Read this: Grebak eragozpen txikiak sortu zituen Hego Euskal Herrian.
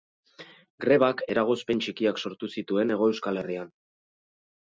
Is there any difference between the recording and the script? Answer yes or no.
no